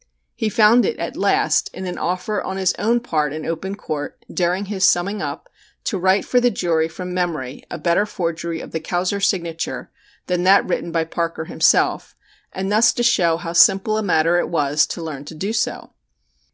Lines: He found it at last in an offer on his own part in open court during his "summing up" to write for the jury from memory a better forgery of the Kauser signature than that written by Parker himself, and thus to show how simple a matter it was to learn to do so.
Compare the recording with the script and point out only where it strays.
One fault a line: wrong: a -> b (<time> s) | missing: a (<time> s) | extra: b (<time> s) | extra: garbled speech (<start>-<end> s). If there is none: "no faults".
no faults